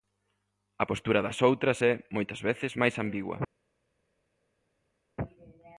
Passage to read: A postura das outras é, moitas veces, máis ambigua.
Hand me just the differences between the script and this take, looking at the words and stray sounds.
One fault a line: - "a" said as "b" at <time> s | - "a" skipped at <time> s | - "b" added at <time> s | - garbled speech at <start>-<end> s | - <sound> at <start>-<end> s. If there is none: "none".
none